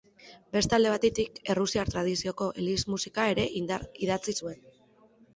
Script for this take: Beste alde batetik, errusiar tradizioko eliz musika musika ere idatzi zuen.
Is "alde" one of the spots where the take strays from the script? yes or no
no